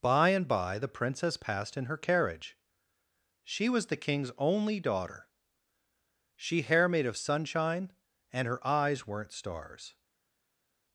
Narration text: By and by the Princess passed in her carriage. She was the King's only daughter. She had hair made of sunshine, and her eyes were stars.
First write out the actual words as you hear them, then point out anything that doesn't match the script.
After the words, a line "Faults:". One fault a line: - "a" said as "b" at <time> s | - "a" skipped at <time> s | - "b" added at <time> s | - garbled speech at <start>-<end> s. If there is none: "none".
By and by the Princess passed in her carriage. She was the King's only daughter. She hair made of sunshine, and her eyes weren't stars.
Faults:
- "had" skipped at 6.6 s
- "were" said as "weren't" at 9.1 s